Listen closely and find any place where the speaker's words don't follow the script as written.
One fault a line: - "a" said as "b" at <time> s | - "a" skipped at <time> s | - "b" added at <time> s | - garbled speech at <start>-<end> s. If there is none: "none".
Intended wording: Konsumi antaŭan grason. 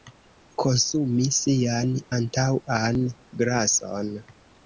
- "sian" added at 1.4 s